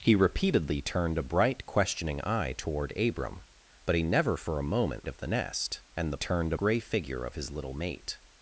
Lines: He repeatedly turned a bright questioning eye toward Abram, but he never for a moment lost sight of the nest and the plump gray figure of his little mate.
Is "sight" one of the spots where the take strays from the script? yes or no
yes